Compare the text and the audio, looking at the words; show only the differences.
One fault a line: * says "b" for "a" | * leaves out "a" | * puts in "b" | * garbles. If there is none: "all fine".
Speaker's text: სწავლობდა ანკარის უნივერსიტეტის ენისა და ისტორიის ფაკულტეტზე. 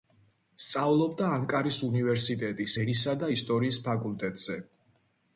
all fine